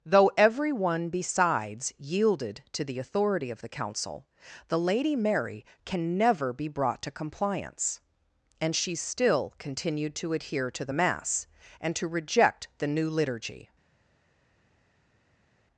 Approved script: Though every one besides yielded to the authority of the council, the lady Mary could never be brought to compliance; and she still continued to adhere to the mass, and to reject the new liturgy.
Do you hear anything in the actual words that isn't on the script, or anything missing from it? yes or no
yes